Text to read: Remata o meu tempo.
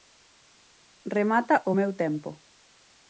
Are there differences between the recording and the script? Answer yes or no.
no